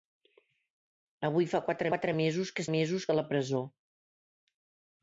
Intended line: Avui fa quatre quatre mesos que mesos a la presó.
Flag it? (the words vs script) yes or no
no